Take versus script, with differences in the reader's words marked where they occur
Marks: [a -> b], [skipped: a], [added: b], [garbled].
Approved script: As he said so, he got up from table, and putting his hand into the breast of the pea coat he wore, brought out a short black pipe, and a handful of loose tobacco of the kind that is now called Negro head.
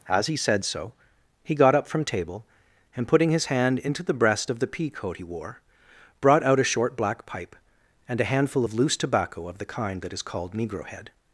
As he said so, he got up from table, and putting his hand into the breast of the pea coat he wore, brought out a short black pipe, and a handful of loose tobacco of the kind that is [skipped: now] called Negro head.